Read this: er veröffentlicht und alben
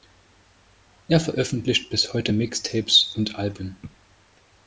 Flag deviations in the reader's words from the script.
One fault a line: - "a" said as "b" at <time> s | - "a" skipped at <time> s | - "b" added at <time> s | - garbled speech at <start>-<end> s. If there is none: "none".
- "bis heute mixtapes" added at 1.9 s